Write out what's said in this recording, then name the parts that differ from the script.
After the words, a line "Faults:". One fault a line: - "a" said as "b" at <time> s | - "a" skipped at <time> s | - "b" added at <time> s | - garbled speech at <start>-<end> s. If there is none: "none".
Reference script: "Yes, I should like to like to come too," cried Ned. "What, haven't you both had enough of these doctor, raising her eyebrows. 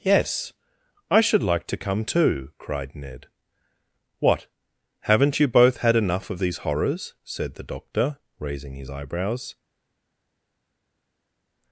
"Yes, I should like to come too," cried Ned. "What, haven't you both had enough of these horrors?" said the doctor, raising his eyebrows.
Faults:
- "like to" skipped at 1.9 s
- "horrors said the" added at 6.7 s
- "her" said as "his" at 8.7 s